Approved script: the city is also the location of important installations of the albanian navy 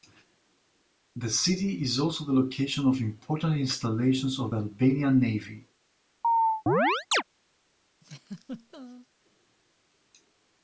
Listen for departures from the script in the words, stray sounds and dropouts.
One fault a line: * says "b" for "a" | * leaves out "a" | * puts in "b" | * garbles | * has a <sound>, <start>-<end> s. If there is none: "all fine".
* has a chirp, 6.2-7.2 s
* has a laugh, 8.0-9.1 s